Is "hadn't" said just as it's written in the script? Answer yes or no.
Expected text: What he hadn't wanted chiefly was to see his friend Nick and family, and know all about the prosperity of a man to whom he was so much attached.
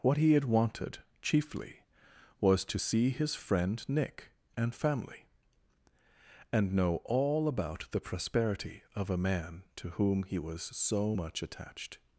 no